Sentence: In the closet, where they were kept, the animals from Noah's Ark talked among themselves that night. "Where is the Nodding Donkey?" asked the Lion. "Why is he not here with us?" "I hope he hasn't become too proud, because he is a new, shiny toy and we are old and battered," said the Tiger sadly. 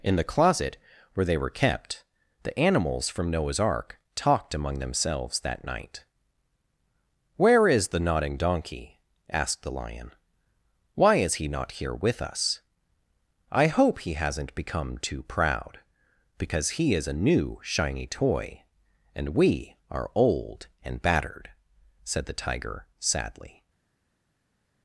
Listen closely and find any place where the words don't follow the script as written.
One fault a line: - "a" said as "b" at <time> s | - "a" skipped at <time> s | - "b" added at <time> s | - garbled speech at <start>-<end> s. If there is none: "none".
none